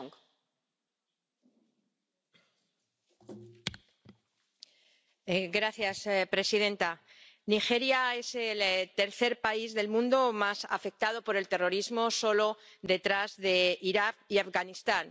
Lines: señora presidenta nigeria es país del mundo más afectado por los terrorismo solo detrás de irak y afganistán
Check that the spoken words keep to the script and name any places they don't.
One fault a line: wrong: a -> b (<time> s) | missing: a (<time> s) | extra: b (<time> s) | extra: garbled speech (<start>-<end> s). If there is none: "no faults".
extra: el tercer (8.3 s)
wrong: los -> el (11.3 s)